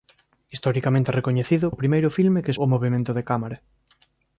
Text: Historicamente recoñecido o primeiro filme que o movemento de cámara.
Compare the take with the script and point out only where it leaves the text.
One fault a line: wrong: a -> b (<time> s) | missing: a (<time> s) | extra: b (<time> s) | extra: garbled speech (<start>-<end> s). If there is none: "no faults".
no faults